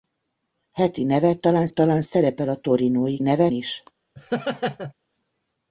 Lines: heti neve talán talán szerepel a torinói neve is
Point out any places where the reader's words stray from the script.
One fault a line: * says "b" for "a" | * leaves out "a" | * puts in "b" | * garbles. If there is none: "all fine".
all fine